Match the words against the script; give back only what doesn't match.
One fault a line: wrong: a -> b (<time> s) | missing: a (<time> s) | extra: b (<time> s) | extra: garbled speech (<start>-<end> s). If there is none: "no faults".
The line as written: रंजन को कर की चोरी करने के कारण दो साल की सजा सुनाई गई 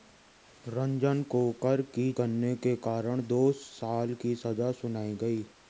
missing: चोरी (2.1 s)